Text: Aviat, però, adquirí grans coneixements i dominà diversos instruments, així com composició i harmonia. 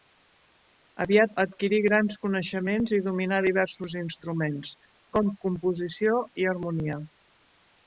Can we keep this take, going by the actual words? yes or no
no